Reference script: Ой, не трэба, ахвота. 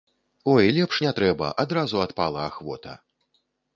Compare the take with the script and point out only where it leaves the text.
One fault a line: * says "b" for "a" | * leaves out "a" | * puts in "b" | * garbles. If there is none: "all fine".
* puts in "лепш"
* puts in "адразу адпала"